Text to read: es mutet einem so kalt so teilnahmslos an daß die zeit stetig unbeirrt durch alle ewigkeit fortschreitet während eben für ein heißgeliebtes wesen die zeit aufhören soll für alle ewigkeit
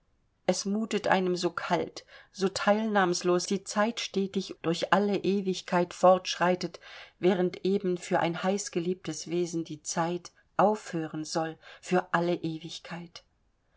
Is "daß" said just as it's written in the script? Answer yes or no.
no